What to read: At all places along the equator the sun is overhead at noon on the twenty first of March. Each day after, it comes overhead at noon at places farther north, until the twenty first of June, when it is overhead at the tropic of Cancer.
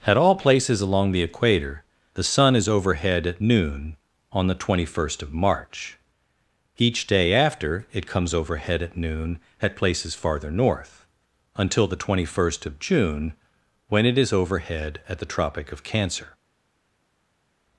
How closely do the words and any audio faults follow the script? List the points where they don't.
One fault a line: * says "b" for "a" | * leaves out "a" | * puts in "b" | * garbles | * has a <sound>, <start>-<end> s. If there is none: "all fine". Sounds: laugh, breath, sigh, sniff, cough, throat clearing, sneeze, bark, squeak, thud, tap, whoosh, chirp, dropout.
all fine